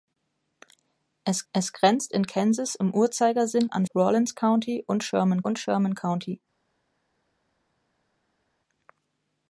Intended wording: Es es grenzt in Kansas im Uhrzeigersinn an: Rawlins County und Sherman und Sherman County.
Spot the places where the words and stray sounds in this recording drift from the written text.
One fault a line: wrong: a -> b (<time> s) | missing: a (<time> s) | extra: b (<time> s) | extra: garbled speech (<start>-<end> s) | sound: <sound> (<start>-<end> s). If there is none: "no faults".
no faults